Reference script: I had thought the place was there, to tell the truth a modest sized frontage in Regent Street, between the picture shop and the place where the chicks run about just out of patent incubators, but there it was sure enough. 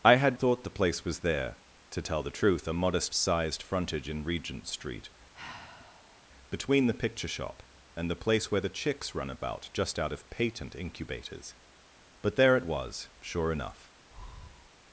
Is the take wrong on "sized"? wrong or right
right